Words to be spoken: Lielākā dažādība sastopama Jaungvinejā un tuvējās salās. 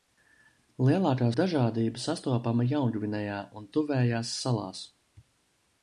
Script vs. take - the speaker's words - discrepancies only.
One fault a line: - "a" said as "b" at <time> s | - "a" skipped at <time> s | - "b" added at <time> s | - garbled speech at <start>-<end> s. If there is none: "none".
none